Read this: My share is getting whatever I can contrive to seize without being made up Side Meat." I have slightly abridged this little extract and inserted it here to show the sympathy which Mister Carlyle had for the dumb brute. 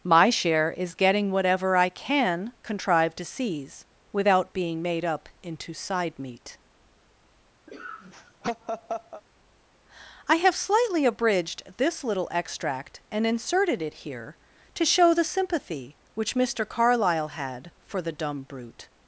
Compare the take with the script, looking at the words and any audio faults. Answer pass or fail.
fail